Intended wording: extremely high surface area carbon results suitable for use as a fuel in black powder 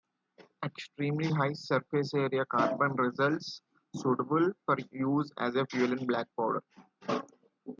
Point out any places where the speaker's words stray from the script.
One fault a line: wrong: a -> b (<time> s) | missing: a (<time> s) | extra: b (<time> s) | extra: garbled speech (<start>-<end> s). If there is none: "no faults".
no faults